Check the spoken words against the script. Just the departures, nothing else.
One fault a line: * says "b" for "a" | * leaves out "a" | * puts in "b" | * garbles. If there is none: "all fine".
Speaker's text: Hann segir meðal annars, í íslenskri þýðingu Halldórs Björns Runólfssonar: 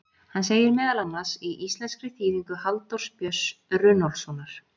all fine